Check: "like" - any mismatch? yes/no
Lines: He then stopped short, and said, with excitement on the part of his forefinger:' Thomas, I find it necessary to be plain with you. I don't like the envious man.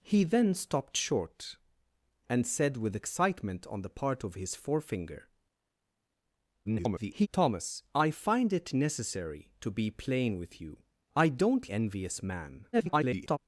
yes